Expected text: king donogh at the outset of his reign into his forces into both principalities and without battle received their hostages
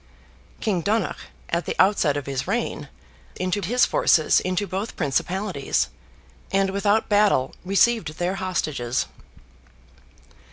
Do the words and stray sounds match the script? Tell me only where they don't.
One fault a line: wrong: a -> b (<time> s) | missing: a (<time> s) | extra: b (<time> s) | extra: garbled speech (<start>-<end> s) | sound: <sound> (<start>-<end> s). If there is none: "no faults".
no faults